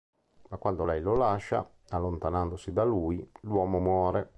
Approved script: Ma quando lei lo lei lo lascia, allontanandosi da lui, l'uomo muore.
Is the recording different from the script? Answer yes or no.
yes